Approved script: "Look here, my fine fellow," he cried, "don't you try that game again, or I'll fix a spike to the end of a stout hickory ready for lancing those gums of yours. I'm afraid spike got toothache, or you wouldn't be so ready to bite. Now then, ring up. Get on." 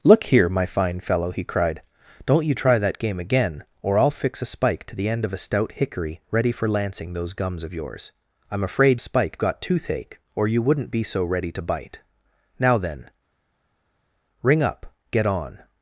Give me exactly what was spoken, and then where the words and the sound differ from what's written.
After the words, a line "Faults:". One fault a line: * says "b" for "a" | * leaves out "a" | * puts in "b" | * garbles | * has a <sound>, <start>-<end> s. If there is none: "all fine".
"Look here, my fine fellow," he cried, "don't you try that game again, or I'll fix a spike to the end of a stout hickory ready for lancing those gums of yours. I'm afraid spike got toothache, or you wouldn't be so ready to bite. Now then, ring up. Get on."
Faults:
all fine